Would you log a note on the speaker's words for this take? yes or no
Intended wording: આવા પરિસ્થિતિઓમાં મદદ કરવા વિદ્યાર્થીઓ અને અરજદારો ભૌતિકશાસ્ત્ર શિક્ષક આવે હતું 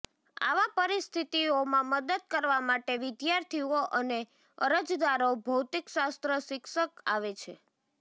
yes